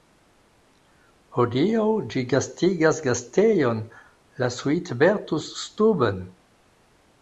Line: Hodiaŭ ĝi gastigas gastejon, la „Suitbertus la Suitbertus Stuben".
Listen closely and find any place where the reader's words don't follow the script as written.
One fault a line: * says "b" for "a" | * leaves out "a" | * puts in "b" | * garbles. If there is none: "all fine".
* leaves out "la Suitbertus"